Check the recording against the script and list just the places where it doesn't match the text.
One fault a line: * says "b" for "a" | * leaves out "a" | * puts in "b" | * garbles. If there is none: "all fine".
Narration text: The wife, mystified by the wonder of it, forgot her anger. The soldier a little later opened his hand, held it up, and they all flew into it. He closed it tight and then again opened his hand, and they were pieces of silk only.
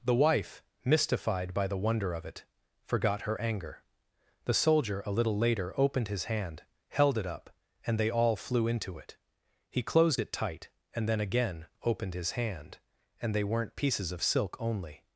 * says "weren't" for "were"